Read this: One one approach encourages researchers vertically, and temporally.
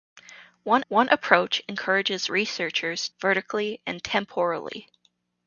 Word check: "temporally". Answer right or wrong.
right